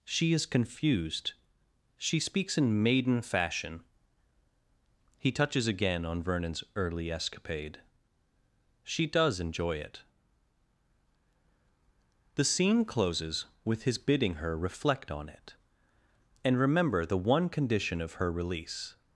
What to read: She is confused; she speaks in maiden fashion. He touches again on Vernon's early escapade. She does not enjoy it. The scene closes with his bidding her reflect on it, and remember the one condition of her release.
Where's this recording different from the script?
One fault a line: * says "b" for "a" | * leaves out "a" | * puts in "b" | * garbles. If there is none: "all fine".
* leaves out "not"